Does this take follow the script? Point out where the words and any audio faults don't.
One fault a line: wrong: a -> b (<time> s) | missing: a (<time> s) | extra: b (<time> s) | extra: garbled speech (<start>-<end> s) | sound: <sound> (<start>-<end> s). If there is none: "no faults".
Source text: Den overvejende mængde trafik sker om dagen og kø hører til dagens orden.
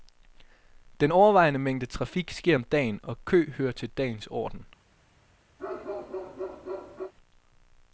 sound: bark (5.6-7.1 s)